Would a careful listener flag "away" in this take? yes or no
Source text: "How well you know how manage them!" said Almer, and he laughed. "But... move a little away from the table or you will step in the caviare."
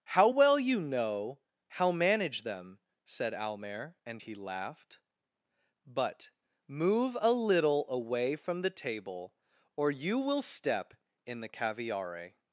no